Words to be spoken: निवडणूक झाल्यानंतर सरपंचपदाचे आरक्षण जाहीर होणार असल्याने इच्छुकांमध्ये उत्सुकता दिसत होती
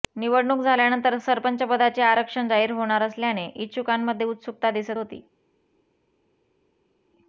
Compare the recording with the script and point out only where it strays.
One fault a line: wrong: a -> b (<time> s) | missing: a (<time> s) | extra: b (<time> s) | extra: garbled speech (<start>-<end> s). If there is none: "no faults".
no faults